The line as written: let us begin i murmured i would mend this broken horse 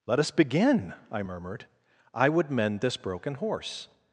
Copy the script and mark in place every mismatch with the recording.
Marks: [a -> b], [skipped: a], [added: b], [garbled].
let us begin i murmured i would mend this broken horse